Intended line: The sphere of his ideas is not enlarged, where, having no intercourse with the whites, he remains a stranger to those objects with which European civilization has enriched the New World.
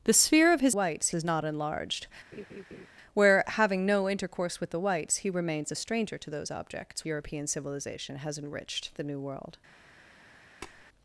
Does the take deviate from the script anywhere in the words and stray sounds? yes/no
yes